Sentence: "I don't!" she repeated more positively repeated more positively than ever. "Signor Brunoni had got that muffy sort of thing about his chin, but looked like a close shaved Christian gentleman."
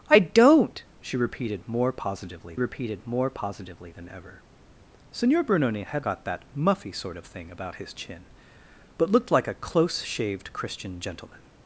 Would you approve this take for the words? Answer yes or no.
yes